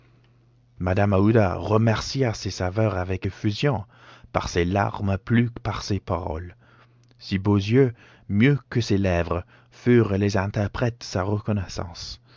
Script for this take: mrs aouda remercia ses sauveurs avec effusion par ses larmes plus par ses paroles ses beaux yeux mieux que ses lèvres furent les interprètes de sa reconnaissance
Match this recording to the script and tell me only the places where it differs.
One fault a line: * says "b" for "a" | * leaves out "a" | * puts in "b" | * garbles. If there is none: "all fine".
all fine